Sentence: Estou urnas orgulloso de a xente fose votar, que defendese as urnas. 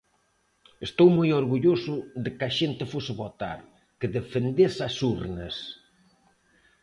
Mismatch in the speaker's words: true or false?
true